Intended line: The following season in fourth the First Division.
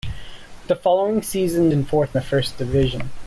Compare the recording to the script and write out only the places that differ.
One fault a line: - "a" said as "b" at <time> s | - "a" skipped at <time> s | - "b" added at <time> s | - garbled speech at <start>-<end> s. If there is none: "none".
none